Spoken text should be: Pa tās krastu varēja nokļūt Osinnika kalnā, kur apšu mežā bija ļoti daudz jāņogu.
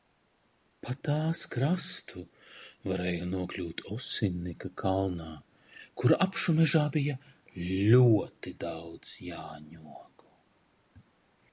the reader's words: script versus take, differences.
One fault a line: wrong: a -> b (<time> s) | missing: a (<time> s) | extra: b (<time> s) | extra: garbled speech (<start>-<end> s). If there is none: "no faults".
no faults